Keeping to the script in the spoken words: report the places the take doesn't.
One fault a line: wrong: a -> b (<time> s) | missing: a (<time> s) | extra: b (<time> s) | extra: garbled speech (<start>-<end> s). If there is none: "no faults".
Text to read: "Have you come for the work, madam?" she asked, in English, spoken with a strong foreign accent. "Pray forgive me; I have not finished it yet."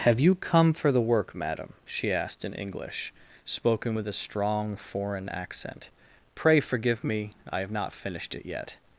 no faults